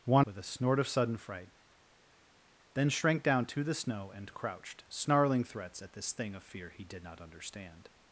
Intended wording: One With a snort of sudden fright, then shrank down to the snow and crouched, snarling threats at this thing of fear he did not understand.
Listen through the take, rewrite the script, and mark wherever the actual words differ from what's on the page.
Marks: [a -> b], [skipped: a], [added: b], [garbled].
One With a snort of sudden fright, then shrank down to the snow and crouched, snarling threats at this thing of fear he did not understand.